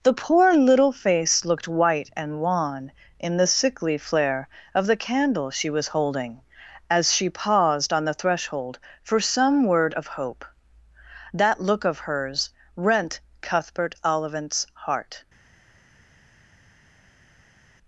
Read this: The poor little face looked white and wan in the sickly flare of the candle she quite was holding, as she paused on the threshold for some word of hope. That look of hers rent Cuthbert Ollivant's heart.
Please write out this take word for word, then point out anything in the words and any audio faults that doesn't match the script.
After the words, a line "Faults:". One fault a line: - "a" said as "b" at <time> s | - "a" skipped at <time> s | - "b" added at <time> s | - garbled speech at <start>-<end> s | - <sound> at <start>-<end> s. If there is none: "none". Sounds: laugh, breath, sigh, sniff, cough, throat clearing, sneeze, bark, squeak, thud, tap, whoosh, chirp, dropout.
The poor little face looked white and wan in the sickly flare of the candle she was holding, as she paused on the threshold for some word of hope. That look of hers rent Cuthbert Ollivant's heart.
Faults:
- "quite" skipped at 5.7 s